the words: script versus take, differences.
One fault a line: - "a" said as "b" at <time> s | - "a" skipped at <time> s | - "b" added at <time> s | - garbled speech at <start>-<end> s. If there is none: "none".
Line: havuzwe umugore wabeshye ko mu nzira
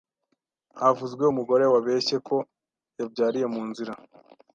- "yabyariye" added at 3.0 s